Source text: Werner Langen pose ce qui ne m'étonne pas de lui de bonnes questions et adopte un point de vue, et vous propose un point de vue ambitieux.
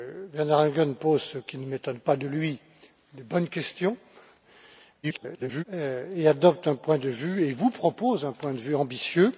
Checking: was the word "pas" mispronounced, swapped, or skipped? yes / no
no